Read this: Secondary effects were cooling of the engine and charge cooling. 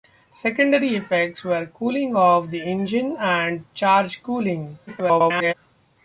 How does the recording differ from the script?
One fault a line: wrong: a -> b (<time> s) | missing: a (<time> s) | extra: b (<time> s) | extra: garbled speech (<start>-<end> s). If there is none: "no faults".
extra: garbled speech (4.9-5.5 s)